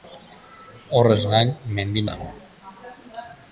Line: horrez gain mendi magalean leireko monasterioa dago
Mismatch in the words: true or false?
true